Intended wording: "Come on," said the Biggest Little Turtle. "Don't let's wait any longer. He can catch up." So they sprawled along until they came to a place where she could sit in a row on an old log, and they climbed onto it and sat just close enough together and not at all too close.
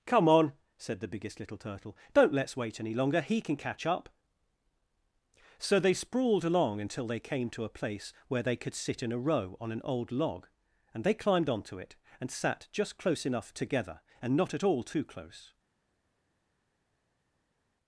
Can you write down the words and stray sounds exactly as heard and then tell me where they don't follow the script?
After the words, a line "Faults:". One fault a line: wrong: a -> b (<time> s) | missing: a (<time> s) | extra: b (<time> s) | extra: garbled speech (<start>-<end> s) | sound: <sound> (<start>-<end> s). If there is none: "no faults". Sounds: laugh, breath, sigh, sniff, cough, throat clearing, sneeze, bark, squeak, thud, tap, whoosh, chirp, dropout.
"Come on," said the Biggest Little Turtle. "Don't let's wait any longer. He can catch up." So they sprawled along until they came to a place where they could sit in a row on an old log, and they climbed onto it and sat just close enough together and not at all too close.
Faults:
wrong: she -> they (8.4 s)